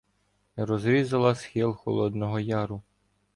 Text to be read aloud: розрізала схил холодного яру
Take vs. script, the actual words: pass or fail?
pass